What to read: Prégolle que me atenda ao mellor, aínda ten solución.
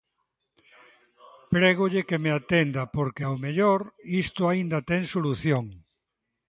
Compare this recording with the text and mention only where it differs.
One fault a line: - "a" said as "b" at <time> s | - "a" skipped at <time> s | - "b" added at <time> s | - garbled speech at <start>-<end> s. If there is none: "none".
- "porque" added at 3.0 s
- "isto" added at 4.2 s